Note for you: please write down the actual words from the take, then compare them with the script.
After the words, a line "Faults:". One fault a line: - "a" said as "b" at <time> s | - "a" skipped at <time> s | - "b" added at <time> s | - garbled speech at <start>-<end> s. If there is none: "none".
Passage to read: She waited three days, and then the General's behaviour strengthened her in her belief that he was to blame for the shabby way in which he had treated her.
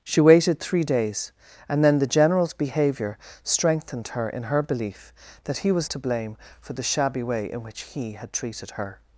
She waited three days, and then the General's behaviour strengthened her in her belief that he was to blame for the shabby way in which he had treated her.
Faults:
none